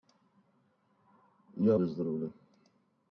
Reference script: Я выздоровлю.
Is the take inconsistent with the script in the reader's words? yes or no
no